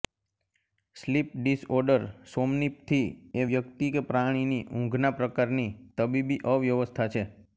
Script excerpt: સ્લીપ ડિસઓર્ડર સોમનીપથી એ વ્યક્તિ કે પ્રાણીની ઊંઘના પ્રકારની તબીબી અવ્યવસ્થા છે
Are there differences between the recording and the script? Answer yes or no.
no